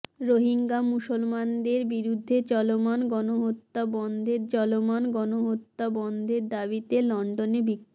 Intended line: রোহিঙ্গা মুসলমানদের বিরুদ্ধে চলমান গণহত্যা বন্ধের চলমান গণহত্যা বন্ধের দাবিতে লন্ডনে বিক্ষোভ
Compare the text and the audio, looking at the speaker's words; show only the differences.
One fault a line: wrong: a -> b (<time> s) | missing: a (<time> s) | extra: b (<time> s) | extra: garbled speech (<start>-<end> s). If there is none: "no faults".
no faults